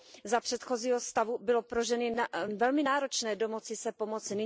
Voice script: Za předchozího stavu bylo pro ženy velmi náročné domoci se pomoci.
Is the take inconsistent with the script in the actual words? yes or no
no